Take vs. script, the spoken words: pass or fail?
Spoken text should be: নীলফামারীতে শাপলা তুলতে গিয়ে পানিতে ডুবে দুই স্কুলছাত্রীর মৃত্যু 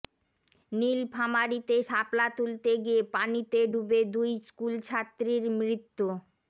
pass